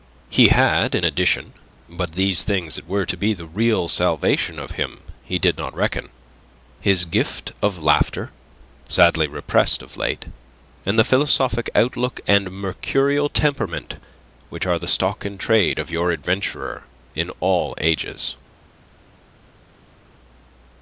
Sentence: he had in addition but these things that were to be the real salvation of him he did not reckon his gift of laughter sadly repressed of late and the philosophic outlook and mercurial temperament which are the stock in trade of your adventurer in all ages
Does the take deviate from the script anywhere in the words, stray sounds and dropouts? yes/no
no